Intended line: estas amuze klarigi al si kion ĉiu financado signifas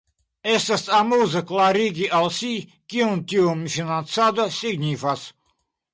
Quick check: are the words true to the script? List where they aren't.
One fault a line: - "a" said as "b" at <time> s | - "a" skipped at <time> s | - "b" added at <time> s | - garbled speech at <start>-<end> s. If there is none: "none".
- "ĉiu" said as "tiu" at 3.3 s